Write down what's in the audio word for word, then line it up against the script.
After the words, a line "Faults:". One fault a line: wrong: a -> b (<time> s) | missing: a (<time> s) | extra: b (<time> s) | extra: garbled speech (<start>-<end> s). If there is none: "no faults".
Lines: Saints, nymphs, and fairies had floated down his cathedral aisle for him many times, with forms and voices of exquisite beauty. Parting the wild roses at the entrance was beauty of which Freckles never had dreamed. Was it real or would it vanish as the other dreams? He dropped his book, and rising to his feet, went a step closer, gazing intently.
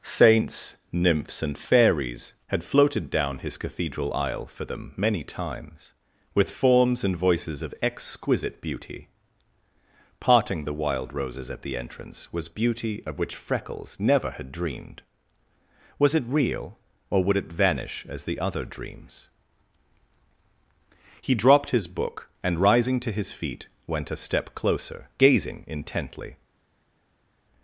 Saints, nymphs, and fairies had floated down his cathedral aisle for them many times, with forms and voices of exquisite beauty. Parting the wild roses at the entrance was beauty of which Freckles never had dreamed. Was it real or would it vanish as the other dreams? He dropped his book, and rising to his feet, went a step closer, gazing intently.
Faults:
wrong: him -> them (4.7 s)